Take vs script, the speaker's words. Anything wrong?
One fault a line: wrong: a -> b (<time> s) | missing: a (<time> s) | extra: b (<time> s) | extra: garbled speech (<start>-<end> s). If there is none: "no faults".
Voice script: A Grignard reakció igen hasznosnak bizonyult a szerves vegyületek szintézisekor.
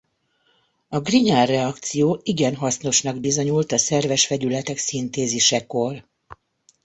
no faults